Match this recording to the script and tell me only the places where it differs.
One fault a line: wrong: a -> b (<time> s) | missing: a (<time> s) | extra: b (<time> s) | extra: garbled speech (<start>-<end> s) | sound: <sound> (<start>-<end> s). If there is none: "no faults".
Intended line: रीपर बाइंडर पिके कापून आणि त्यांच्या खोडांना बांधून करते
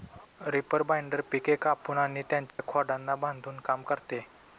sound: dropout (2.5-2.6 s)
extra: काम (3.6 s)